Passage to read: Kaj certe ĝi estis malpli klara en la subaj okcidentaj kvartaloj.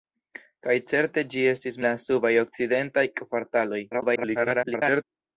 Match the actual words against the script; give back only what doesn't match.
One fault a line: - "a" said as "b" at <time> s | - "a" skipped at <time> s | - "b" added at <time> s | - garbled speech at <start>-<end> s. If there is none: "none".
- "malpli klara en" skipped at 1.8 s
- garbled speech at 3.9-5.0 s